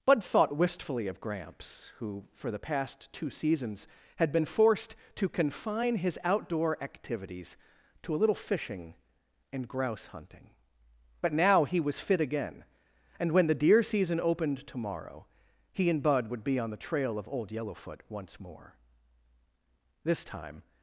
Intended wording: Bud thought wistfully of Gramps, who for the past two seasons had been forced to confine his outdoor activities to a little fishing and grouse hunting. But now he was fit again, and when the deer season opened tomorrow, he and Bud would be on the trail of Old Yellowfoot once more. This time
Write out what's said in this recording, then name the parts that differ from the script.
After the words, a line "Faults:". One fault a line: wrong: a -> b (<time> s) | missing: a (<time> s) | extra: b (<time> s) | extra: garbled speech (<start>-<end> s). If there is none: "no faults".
Bud thought wistfully of Gramps, who for the past two seasons had been forced to confine his outdoor activities to a little fishing and grouse hunting. But now he was fit again, and when the deer season opened tomorrow, he and Bud would be on the trail of Old Yellowfoot once more. This time
Faults:
no faults